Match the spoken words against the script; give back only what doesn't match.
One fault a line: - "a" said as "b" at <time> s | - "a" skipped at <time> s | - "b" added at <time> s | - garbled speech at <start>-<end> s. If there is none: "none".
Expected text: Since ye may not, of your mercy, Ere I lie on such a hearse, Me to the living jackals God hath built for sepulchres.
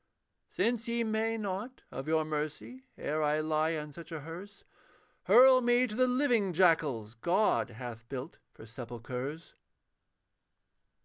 - "Hurl" added at 5.2 s